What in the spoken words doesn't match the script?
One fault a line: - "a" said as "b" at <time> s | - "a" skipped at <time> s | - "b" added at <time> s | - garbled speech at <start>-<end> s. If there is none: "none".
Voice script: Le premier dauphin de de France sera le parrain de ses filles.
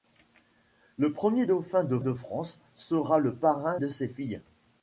none